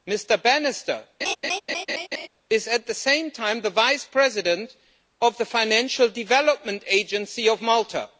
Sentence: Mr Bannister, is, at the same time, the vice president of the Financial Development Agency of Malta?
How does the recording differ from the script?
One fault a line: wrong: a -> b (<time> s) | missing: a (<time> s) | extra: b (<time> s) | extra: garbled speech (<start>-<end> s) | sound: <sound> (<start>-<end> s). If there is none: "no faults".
sound: laugh (1.2-2.3 s)